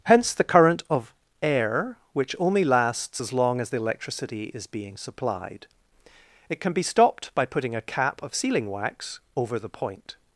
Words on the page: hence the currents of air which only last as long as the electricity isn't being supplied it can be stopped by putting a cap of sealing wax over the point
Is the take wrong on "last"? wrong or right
wrong